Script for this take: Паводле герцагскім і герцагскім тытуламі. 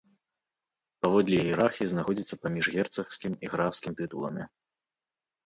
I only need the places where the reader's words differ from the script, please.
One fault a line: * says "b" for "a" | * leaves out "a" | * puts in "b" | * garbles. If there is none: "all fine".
* puts in "іерархіі знаходзіцца паміж"
* says "графскім" for "герцагскім"